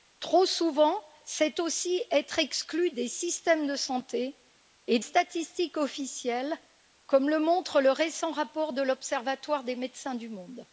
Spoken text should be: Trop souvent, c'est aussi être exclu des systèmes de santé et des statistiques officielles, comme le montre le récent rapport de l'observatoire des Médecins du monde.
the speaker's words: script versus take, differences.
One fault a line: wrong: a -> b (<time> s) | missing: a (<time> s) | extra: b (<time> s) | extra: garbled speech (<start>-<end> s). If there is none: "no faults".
missing: des (5.0 s)